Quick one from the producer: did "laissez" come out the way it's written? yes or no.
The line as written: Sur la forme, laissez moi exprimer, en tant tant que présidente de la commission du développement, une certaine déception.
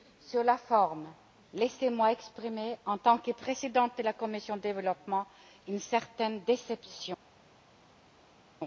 yes